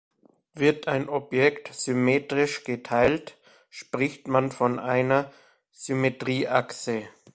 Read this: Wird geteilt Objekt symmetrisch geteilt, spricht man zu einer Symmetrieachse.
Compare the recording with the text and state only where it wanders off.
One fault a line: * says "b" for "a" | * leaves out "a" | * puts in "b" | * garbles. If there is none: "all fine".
* says "ein" for "geteilt"
* says "von" for "zu"